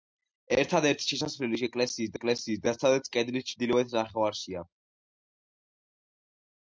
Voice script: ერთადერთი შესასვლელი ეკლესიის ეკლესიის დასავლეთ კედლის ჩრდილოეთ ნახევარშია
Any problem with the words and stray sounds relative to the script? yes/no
no